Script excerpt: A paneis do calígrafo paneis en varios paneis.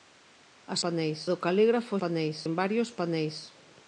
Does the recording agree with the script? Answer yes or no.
yes